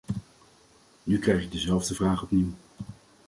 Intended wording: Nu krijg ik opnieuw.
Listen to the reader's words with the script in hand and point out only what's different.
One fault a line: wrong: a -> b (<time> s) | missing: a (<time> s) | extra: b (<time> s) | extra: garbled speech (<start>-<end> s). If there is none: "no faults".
extra: dezelfde vraag (1.5 s)